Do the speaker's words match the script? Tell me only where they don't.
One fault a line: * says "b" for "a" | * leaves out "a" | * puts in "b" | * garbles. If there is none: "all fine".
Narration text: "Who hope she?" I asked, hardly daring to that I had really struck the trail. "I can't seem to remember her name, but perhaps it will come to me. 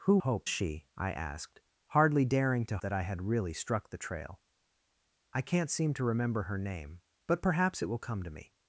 all fine